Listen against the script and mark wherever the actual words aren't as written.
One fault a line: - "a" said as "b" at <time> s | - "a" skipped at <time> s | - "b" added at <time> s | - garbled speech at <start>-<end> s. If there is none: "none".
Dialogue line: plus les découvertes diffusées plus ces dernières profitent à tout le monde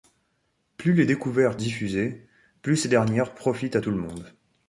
none